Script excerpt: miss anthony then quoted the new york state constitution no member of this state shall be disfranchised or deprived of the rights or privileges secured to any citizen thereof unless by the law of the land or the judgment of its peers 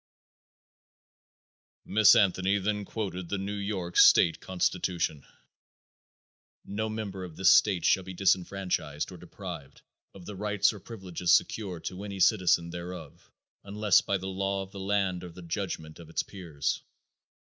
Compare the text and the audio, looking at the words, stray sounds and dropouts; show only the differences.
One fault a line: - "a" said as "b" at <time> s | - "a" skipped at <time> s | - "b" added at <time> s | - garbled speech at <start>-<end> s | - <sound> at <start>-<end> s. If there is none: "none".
none